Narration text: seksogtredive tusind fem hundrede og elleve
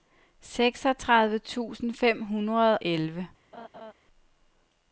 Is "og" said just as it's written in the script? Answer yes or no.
no